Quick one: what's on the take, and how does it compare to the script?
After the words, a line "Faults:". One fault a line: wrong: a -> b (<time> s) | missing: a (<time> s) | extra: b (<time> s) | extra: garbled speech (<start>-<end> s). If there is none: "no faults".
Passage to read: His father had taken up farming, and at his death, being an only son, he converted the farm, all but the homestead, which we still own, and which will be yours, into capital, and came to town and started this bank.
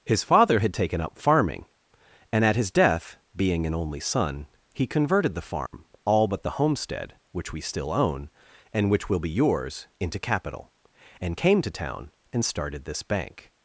His father had taken up farming, and at his death, being an only son, he converted the farm, all but the homestead, which we still own, and which will be yours, into capital, and came to town and started this bank.
Faults:
no faults